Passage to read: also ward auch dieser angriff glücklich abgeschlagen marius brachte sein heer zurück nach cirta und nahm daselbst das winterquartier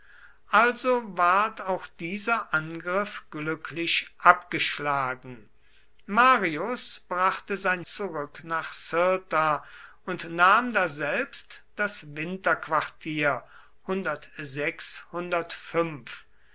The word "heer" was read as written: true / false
false